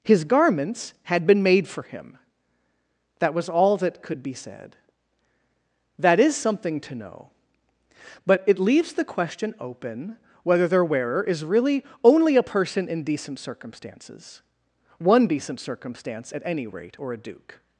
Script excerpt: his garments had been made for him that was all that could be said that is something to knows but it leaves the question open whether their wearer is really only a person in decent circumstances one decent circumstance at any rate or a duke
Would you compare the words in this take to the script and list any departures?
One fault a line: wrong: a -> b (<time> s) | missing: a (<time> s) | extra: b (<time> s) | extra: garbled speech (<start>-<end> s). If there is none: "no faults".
wrong: knows -> know (7.0 s)